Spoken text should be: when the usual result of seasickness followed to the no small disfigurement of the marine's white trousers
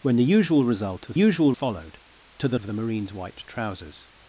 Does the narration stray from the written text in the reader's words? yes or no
yes